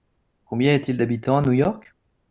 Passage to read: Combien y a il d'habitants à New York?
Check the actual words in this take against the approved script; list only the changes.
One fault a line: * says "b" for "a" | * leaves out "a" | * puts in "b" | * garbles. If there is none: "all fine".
* puts in "t"